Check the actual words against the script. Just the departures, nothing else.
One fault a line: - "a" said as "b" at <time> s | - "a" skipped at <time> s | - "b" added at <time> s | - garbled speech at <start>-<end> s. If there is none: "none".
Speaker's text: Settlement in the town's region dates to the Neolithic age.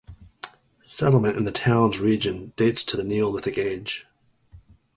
none